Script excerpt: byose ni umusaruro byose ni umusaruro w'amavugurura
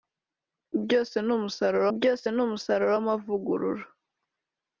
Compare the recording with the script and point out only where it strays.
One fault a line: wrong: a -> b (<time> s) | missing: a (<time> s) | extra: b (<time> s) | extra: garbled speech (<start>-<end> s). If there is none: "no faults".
no faults